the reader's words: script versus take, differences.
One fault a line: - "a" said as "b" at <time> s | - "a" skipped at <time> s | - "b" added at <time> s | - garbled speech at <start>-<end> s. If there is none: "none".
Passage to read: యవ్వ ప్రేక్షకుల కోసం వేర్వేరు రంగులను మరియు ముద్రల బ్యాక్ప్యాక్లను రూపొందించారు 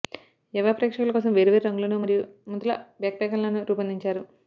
none